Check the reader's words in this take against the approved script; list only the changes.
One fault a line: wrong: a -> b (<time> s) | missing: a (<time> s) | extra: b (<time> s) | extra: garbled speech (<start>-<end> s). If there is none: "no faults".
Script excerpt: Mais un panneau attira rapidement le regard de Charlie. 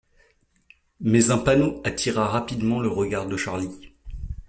no faults